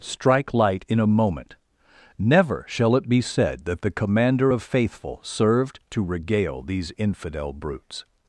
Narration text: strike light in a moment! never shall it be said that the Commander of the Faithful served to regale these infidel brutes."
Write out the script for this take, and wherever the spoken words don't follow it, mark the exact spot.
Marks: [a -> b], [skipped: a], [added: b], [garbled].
strike light in a moment! never shall it be said that the Commander of [skipped: the] Faithful served to regale these infidel brutes."